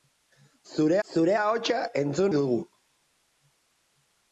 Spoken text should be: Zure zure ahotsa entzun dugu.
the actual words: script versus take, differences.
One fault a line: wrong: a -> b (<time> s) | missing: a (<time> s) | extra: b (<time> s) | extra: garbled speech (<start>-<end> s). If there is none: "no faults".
no faults